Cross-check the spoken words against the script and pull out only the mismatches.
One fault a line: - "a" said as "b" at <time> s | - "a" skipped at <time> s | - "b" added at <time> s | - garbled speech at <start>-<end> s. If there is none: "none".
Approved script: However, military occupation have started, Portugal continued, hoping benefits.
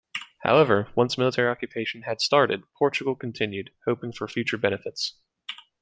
- "once" added at 0.9 s
- "have" said as "had" at 2.0 s
- "for future" added at 4.1 s